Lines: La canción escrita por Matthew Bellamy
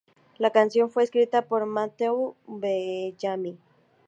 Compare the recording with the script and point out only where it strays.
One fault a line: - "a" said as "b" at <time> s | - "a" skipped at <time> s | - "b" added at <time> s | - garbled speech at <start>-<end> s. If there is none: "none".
- "fue" added at 0.9 s